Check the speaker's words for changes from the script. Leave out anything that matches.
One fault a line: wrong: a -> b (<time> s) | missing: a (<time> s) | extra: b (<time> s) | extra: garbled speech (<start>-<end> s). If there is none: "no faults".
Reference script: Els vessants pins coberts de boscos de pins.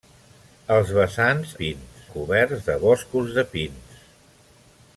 no faults